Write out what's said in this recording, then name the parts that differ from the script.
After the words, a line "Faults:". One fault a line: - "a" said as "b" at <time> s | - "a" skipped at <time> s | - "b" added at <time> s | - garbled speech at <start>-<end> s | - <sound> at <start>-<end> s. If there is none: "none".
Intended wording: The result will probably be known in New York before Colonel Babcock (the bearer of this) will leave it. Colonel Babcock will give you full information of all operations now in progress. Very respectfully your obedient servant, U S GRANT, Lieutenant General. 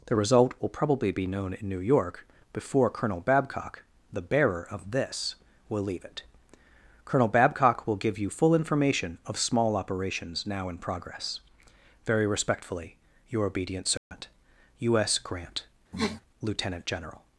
The result will probably be known in New York before Colonel Babcock (the bearer of this) will leave it. Colonel Babcock will give you full information of small operations now in progress. Very respectfully your obedient servant, U S GRANT, Lieutenant General.
Faults:
- "all" said as "small" at 9.4 s
- dropout at 14.0-14.1 s
- sniff at 15.9-16.2 s